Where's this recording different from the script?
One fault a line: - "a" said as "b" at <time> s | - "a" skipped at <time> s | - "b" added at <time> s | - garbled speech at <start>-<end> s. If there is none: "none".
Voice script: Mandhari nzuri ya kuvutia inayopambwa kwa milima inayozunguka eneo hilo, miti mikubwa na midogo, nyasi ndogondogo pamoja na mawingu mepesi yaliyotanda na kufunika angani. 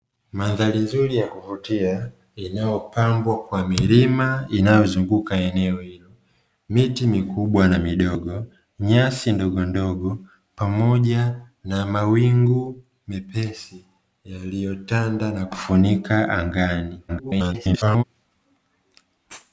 - garbled speech at 17.1-18.0 s